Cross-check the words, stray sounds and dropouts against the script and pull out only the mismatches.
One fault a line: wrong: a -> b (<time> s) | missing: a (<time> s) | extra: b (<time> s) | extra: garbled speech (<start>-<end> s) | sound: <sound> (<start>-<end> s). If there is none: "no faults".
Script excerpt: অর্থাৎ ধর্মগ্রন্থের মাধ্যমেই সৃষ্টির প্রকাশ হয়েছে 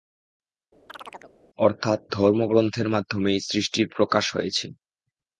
sound: chirp (0.9-1.4 s)